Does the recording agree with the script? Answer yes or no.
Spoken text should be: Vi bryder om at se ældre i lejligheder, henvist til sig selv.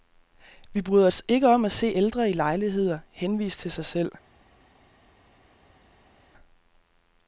no